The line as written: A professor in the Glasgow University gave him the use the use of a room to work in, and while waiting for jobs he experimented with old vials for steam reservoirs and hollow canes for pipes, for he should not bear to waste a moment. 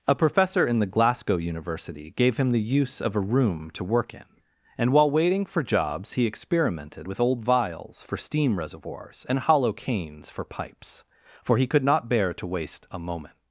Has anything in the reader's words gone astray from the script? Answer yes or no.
yes